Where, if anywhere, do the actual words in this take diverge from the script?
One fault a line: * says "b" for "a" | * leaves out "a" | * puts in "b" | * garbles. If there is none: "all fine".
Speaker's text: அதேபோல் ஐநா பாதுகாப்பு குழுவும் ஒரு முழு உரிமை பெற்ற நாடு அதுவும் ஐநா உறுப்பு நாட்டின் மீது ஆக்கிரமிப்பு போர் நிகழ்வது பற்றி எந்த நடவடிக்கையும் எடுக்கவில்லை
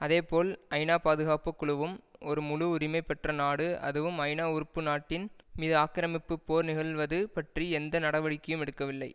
all fine